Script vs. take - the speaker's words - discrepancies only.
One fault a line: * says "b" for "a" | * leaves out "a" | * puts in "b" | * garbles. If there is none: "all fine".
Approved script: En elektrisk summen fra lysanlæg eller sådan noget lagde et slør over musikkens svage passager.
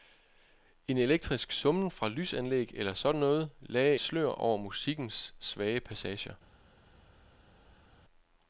* leaves out "et"